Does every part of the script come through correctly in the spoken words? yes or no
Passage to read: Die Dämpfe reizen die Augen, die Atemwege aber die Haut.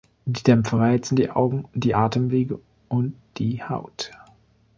no